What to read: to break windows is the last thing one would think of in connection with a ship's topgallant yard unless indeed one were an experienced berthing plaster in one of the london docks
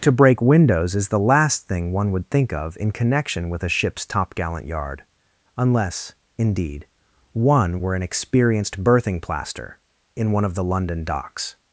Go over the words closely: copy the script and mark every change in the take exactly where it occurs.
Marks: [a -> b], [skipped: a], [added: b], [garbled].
to break windows is the last thing one would think of in connection with a ship's topgallant yard unless indeed one were an experienced berthing plaster in one of the london docks